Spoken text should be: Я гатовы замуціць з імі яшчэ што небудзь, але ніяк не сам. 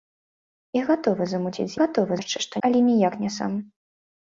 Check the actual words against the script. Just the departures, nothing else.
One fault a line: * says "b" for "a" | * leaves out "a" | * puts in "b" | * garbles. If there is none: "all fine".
* says "гатовы" for "імі"
* leaves out "небудзь"